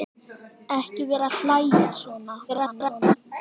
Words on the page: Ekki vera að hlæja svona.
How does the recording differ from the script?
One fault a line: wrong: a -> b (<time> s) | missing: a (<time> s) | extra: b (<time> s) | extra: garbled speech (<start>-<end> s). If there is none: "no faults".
extra: garbled speech (2.5-3.2 s)